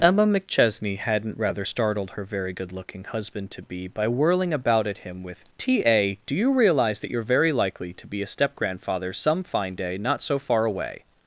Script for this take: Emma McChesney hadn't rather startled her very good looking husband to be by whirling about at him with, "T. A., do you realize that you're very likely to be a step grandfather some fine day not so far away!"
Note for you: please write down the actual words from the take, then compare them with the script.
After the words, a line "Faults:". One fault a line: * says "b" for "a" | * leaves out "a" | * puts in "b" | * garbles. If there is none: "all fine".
Emma McChesney hadn't rather startled her very good looking husband to be by whirling about at him with, "T. A., do you realize that you're very likely to be a step grandfather some fine day not so far away!"
Faults:
all fine